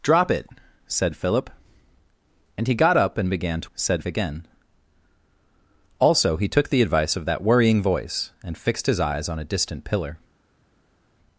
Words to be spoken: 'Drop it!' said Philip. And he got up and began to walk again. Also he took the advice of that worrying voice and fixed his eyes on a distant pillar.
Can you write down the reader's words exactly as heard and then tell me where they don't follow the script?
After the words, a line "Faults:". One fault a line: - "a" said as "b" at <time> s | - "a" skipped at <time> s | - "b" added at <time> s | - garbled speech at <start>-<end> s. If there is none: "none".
'Drop it!' said Philip. And he got up and began to said again. Also he took the advice of that worrying voice and fixed his eyes on a distant pillar.
Faults:
- "walk" said as "said" at 3.7 s